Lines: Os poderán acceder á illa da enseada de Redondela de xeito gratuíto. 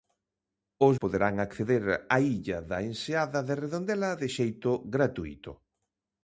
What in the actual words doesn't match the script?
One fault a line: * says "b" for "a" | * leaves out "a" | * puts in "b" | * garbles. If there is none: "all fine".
all fine